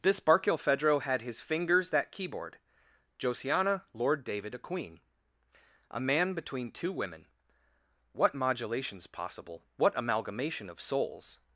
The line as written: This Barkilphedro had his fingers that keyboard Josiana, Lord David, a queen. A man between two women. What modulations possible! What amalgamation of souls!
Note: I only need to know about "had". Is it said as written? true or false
true